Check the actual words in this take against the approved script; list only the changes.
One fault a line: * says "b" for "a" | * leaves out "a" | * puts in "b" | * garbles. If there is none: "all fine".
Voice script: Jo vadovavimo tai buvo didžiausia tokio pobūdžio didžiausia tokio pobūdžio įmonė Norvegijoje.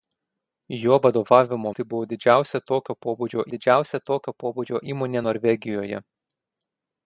all fine